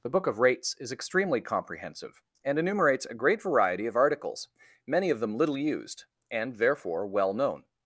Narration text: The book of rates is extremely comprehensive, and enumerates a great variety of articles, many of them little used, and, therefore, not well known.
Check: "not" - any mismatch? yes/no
yes